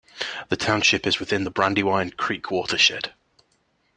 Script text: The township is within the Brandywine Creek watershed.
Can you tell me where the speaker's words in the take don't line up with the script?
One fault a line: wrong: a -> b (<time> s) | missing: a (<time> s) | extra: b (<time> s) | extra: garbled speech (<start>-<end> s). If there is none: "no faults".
no faults